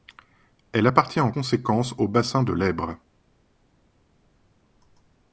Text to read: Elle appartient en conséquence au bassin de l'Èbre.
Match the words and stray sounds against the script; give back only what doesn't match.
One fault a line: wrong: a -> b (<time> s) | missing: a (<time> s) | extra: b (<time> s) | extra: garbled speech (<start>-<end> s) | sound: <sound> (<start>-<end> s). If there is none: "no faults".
no faults